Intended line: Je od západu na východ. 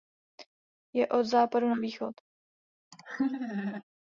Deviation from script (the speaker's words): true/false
false